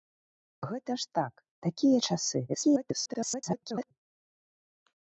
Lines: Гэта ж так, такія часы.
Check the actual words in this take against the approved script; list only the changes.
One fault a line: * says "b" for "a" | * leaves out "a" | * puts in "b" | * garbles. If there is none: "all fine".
* garbles